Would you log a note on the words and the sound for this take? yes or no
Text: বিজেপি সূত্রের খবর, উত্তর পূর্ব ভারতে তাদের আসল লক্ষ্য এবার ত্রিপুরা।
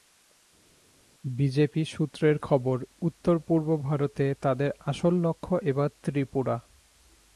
no